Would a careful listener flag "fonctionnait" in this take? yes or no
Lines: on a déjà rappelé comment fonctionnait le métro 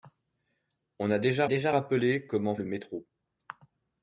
yes